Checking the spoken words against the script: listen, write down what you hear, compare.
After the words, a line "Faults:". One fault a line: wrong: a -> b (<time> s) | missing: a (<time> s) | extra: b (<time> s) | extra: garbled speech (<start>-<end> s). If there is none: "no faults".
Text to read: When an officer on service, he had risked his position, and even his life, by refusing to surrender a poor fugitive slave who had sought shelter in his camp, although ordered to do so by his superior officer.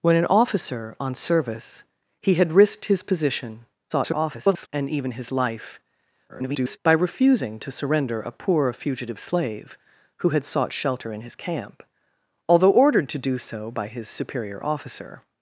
When an officer on service, he had risked his position, [garbled] and even his life, [garbled] by refusing to surrender a poor fugitive slave who had sought shelter in his camp, although ordered to do so by his superior officer.
Faults:
extra: garbled speech (3.9-4.7 s)
extra: garbled speech (6.3-6.8 s)